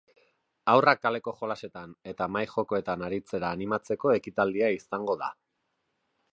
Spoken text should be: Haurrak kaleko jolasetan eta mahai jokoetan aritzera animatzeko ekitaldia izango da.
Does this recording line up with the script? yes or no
yes